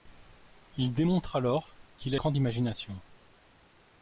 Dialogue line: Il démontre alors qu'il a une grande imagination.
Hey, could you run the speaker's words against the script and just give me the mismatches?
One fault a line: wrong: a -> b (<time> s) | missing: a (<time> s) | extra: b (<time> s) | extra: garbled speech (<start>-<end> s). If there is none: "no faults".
missing: une (2.2 s)